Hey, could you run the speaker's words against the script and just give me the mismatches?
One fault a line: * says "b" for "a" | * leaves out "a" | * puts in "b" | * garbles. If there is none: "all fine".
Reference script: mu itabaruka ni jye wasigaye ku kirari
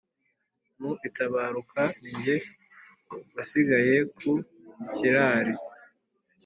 all fine